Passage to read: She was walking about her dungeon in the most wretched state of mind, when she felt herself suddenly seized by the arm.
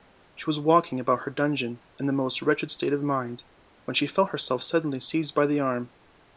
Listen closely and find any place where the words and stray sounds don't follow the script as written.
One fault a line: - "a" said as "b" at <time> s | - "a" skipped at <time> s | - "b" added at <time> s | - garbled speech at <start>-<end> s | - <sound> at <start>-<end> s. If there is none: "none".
none